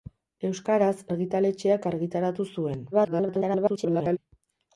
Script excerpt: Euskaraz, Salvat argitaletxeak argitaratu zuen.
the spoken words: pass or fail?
fail